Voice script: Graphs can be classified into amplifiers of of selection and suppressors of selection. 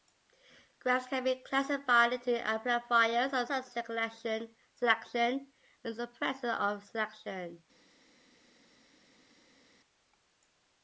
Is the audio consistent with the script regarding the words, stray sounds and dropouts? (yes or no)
yes